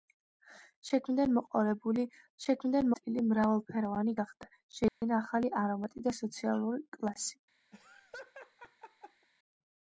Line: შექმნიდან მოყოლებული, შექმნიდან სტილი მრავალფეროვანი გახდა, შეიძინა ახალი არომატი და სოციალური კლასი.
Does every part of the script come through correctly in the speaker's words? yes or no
yes